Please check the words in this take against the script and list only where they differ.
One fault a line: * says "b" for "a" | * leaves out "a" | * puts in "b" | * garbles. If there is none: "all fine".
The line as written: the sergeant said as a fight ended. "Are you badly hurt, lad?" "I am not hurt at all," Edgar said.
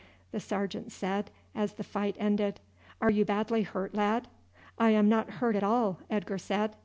* says "the" for "a"